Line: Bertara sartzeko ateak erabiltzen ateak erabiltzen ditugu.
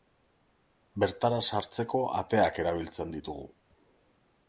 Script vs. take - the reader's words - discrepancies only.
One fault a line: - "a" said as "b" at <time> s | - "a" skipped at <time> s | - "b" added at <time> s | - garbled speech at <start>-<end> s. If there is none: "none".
- "ateak erabiltzen" skipped at 3.1 s